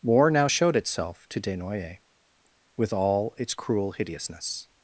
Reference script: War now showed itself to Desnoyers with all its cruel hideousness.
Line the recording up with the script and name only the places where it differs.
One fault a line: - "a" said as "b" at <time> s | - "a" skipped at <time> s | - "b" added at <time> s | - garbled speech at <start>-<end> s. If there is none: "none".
none